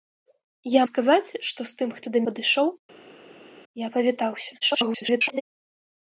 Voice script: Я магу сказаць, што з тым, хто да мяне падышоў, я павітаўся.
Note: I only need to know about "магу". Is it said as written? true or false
false